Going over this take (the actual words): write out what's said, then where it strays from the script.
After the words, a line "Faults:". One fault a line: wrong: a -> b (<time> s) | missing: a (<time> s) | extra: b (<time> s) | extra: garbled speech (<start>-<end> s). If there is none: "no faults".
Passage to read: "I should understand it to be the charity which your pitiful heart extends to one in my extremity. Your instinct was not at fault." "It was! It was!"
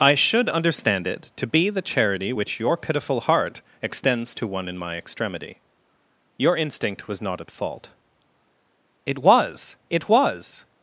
"I should understand it to be the charity which your pitiful heart extends to one in my extremity. Your instinct was not at fault." "It was! It was!"
Faults:
no faults